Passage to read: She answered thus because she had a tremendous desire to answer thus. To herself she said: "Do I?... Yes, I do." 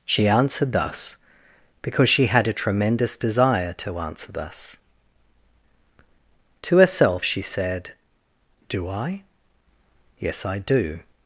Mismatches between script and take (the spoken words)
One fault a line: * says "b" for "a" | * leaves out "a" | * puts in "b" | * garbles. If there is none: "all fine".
all fine